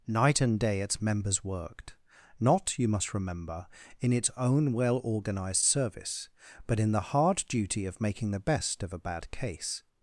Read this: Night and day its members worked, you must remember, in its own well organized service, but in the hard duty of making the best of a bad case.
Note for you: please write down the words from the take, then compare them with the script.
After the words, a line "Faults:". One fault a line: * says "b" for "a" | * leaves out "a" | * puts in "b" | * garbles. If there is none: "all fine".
Night and day its members worked, not, you must remember, in its own well organized service, but in the hard duty of making the best of a bad case.
Faults:
* puts in "not"